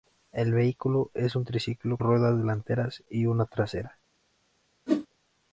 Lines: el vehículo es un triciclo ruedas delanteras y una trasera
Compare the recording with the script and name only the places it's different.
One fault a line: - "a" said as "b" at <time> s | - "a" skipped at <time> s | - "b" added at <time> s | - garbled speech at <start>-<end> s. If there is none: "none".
none